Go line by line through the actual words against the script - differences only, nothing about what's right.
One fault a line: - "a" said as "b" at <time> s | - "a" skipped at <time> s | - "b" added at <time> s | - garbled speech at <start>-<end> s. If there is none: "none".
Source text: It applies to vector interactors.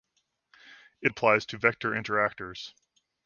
none